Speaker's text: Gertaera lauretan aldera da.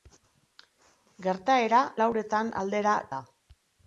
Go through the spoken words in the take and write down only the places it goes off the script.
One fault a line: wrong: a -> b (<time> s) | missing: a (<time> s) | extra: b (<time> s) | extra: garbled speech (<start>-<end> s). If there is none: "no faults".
no faults